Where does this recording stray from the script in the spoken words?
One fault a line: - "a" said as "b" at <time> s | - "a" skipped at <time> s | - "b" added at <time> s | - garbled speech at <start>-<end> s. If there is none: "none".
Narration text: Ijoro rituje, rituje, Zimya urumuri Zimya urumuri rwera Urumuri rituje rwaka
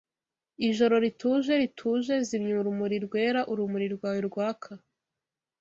- "Zimya urumuri" skipped at 3.0 s
- "rituje" said as "rwawe" at 4.0 s